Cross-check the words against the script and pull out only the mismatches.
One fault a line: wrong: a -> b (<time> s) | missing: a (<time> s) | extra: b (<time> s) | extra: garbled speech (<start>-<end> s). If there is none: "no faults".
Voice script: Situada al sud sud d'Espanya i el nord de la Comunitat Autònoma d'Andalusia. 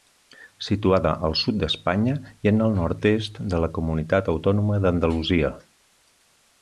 missing: sud (1.6 s)
extra: en (2.5 s)
extra: est (3.1 s)